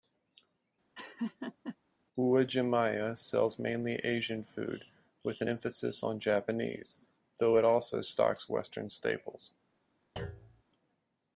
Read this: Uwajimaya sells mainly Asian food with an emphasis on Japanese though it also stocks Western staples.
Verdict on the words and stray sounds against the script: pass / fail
fail